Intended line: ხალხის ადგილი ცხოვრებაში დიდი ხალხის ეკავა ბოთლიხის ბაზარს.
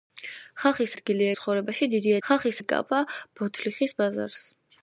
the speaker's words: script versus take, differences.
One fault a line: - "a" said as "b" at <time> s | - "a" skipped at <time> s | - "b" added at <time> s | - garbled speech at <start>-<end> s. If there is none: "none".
none